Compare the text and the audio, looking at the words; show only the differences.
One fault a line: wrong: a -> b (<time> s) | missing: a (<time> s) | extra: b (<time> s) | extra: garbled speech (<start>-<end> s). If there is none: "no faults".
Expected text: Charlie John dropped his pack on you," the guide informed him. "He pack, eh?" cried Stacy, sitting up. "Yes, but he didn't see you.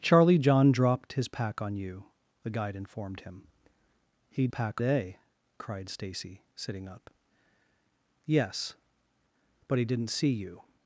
no faults